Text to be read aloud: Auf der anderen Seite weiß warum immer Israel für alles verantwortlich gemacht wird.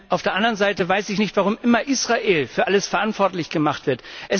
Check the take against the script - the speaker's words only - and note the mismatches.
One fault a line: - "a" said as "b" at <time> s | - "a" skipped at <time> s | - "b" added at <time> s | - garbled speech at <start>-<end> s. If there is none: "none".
- "ich nicht" added at 1.1 s